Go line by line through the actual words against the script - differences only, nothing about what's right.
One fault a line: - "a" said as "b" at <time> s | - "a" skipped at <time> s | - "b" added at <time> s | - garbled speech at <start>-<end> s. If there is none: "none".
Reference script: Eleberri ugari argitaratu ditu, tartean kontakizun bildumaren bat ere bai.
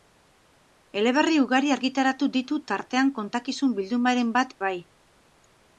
- "ere" skipped at 4.5 s